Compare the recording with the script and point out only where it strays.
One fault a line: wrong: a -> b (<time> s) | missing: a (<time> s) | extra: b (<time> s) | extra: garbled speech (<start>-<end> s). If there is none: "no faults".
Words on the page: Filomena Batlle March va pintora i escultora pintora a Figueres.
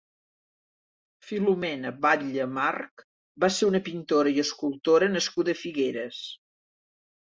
extra: ser una (3.6 s)
wrong: pintora -> nascuda (5.2 s)